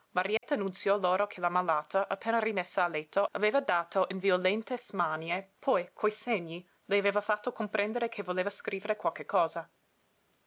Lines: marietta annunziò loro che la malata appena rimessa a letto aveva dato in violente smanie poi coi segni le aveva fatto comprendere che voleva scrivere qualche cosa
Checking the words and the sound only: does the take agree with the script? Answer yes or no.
no